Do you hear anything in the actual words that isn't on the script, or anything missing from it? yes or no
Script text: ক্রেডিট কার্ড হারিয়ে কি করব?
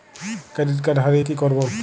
no